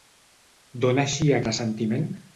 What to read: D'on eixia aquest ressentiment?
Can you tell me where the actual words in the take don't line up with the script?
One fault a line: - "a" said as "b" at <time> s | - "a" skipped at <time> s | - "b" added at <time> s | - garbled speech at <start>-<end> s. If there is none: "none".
- "aquest" skipped at 1.4 s